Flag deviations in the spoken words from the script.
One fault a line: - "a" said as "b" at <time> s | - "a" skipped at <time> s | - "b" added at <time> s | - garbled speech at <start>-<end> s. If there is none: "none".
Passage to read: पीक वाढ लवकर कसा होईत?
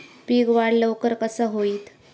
none